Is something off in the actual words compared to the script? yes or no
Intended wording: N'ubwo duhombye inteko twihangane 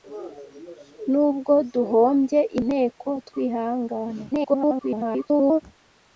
yes